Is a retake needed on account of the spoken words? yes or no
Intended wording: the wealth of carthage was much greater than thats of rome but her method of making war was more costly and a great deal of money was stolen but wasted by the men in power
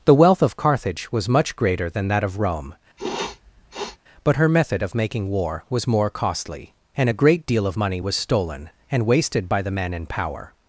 yes